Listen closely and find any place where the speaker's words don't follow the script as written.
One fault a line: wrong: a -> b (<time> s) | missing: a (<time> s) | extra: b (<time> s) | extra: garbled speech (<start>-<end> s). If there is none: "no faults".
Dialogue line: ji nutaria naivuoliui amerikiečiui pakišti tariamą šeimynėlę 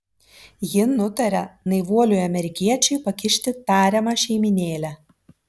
no faults